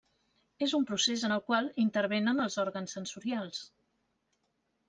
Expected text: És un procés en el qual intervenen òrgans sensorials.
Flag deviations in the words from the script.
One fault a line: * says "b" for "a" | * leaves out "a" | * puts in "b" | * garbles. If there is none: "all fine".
* puts in "els"